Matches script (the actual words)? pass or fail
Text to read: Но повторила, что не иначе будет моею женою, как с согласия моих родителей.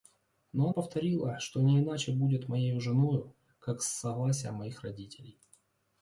pass